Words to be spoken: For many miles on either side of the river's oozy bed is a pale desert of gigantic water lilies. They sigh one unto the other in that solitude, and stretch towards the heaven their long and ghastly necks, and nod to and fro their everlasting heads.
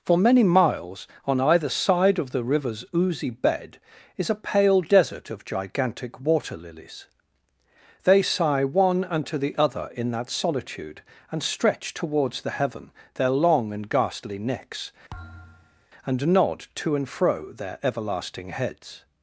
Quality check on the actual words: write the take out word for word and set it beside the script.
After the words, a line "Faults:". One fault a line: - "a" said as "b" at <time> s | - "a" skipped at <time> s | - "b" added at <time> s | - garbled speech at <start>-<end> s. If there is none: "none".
For many miles on either side of the river's oozy bed is a pale desert of gigantic water lilies. They sigh one unto the other in that solitude, and stretch towards the heaven their long and ghastly necks, and nod to and fro their everlasting heads.
Faults:
none